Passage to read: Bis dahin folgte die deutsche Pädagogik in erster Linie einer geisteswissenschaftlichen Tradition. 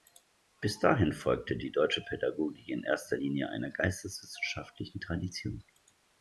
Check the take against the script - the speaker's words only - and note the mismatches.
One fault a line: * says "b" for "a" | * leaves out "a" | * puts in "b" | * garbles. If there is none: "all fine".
all fine